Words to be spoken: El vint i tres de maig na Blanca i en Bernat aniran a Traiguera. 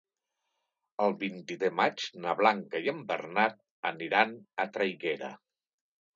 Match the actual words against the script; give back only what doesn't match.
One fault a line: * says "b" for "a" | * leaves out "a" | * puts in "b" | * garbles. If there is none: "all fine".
* leaves out "tres"